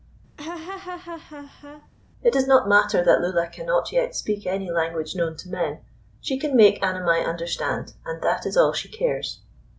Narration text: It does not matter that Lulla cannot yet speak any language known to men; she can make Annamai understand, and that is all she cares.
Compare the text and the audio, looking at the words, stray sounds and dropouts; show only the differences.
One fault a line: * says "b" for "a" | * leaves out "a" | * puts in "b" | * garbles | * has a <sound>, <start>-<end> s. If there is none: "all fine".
* has a laugh, 0.4-1.9 s